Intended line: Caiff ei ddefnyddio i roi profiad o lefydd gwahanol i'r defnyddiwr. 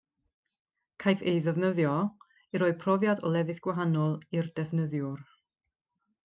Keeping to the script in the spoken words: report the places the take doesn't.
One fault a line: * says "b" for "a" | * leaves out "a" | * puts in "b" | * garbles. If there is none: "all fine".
all fine